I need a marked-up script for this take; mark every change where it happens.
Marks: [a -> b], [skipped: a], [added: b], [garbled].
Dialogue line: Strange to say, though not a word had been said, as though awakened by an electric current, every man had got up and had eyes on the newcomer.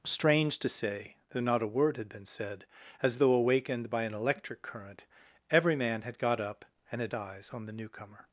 Strange to say, though not a word had been said, as though awakened by an electric current, every man had got up and had eyes on the newcomer.